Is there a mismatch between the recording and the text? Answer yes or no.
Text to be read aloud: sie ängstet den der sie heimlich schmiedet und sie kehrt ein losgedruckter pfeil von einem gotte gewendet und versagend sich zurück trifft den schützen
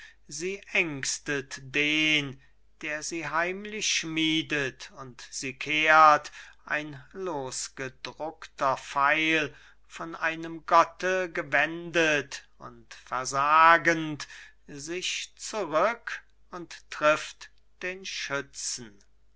yes